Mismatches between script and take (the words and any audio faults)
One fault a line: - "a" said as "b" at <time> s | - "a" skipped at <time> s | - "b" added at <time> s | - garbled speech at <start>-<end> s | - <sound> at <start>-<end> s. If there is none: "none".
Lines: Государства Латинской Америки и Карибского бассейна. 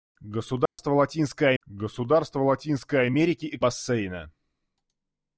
- dropout at 0.7-0.8 s
- "государства Латинской" added at 1.6 s
- "Карибского" skipped at 3.6 s